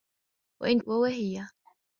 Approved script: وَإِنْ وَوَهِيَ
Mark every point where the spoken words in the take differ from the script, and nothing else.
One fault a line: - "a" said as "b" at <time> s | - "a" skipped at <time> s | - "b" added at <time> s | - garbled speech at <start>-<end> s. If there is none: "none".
none